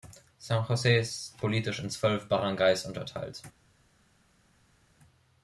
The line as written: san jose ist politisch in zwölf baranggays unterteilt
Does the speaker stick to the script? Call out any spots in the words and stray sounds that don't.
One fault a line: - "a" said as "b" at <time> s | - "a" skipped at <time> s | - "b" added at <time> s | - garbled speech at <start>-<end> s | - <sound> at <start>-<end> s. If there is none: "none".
none